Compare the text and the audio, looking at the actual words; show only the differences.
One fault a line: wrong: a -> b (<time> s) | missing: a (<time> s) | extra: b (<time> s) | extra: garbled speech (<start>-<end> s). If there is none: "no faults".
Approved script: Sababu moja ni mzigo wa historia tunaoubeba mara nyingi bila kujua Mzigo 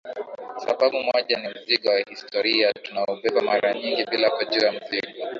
no faults